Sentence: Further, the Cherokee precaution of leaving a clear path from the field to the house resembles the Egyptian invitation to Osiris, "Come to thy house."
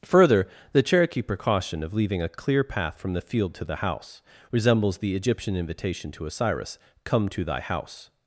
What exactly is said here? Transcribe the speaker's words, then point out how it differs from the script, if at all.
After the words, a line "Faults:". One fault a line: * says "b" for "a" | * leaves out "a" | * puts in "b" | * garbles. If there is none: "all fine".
Further, the Cherokee precaution of leaving a clear path from the field to the house resembles the Egyptian invitation to Osiris, "Come to thy house."
Faults:
all fine